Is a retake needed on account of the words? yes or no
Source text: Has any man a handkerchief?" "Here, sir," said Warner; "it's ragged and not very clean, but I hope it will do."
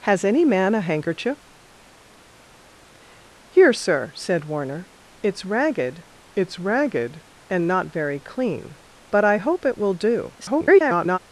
yes